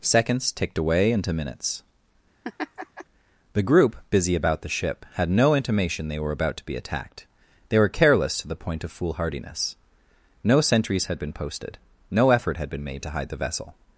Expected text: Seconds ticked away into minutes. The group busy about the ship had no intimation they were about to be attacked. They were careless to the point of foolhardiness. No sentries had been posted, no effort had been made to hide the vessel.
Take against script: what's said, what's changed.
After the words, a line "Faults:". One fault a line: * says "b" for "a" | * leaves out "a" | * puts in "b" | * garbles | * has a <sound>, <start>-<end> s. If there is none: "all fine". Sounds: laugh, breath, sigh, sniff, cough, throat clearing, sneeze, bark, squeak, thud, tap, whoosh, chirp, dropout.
Seconds ticked away into minutes. The group busy about the ship had no intimation they were about to be attacked. They were careless to the point of foolhardiness. No sentries had been posted, no effort had been made to hide the vessel.
Faults:
* has a laugh, 2.4-3.0 s